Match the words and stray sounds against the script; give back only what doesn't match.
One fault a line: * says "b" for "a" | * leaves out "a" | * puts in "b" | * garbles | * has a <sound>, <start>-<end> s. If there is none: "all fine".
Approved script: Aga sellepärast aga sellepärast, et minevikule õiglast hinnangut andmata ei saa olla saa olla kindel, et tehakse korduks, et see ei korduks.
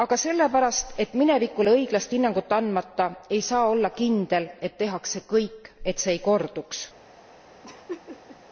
* leaves out "aga sellepärast"
* leaves out "saa olla"
* says "kõik" for "korduks"
* has a laugh, 7.6-8.4 s